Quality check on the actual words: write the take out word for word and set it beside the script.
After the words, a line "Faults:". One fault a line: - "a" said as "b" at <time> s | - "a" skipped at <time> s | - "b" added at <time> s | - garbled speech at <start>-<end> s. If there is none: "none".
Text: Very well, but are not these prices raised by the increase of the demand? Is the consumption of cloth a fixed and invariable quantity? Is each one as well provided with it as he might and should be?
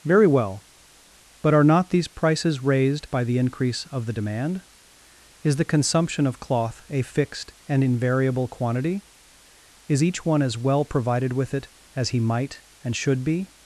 Very well, but are not these prices raised by the increase of the demand? Is the consumption of cloth a fixed and invariable quantity? Is each one as well provided with it as he might and should be?
Faults:
none